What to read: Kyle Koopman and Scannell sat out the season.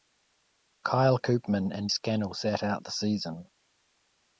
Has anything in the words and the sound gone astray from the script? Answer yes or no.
no